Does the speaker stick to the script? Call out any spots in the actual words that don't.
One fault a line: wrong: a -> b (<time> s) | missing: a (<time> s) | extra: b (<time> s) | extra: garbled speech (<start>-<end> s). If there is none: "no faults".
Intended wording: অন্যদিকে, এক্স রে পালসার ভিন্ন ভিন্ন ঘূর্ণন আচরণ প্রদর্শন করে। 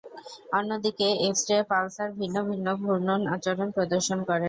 no faults